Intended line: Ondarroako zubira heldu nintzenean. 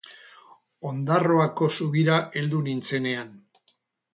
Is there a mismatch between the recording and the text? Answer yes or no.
no